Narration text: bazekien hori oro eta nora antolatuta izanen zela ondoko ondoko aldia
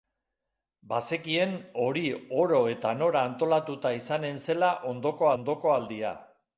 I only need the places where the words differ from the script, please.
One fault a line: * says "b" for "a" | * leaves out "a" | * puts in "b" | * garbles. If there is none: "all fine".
all fine